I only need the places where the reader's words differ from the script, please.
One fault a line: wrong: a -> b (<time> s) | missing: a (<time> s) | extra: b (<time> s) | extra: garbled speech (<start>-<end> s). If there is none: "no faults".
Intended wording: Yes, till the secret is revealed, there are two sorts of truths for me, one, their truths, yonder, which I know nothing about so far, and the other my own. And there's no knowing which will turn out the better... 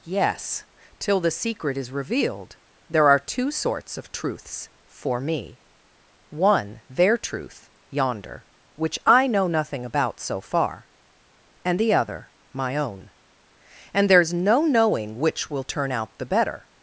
wrong: truths -> truth (7.2 s)